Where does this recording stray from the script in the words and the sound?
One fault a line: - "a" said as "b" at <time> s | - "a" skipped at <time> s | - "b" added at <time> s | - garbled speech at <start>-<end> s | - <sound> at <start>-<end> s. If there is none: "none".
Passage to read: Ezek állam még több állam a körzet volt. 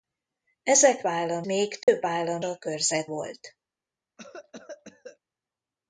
- dropout at 1.8-1.9 s
- cough at 4.2-5.2 s